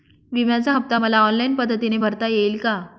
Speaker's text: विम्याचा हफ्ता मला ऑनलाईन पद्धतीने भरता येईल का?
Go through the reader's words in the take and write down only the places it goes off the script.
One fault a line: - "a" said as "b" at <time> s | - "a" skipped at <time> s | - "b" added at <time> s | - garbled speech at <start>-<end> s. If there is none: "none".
none